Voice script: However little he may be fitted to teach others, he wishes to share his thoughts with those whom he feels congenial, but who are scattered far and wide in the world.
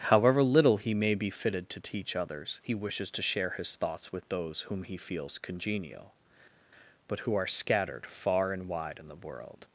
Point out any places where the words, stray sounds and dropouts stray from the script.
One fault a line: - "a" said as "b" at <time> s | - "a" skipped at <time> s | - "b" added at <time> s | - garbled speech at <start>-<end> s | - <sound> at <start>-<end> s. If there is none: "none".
none